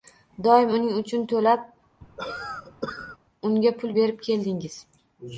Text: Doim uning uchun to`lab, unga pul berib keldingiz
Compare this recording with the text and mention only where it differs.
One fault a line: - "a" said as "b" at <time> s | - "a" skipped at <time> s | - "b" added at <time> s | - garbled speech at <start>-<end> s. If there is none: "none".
none